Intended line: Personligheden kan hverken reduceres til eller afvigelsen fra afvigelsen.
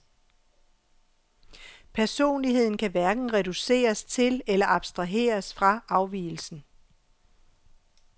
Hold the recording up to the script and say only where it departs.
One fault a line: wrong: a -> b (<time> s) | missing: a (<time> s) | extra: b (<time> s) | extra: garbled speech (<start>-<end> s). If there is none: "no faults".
wrong: afvigelsen -> abstraheres (4.7 s)